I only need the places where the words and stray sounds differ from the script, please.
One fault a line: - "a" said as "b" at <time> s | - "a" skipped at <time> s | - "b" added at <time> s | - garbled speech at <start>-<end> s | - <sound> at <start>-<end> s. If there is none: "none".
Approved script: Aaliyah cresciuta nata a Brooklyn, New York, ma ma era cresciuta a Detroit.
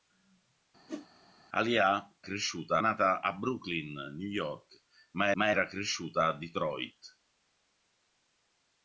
- whoosh at 0.9-1.1 s